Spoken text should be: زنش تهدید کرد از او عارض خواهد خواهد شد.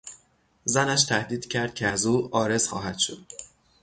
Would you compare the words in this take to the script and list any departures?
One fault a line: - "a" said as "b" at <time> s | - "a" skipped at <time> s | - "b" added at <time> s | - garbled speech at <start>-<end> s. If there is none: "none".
- "که" added at 1.8 s
- "خواهد" skipped at 3.0 s